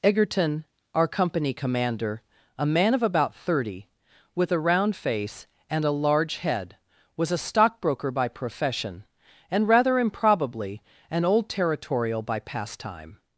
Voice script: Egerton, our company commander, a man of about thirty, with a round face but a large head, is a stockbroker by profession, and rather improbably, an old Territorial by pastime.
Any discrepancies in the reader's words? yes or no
yes